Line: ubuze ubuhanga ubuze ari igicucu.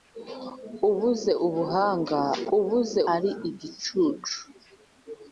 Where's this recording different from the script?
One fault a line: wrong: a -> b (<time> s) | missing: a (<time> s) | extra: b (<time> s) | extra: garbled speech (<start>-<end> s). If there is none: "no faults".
no faults